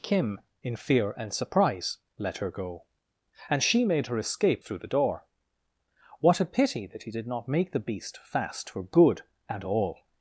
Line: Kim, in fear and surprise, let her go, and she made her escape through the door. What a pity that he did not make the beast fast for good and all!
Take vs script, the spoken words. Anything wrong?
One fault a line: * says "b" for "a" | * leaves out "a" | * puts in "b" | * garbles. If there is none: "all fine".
all fine